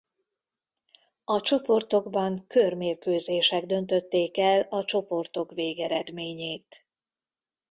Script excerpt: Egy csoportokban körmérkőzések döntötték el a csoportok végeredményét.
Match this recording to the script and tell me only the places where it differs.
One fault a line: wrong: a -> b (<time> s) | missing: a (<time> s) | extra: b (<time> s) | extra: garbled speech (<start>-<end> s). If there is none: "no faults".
wrong: Egy -> A (1.2 s)